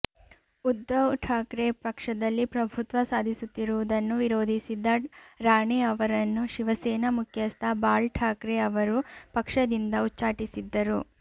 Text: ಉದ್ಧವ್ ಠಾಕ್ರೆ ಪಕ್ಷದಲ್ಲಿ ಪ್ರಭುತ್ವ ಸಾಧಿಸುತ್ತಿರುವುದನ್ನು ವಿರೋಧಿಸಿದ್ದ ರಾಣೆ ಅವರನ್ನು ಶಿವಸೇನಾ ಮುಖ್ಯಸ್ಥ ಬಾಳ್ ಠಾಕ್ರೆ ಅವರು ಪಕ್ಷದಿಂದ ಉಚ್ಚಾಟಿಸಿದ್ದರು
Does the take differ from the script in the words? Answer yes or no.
no